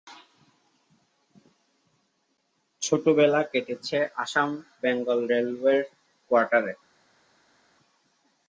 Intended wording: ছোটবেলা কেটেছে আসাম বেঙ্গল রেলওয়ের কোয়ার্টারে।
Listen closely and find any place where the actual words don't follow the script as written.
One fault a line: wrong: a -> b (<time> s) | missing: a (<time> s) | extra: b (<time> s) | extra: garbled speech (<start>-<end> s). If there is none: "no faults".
no faults